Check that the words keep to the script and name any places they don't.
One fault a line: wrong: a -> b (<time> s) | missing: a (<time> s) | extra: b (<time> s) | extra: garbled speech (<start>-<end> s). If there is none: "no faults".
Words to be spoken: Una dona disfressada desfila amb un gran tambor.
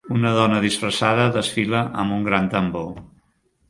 no faults